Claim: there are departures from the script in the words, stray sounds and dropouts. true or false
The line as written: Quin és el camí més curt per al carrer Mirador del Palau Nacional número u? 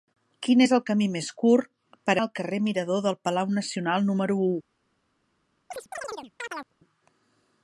true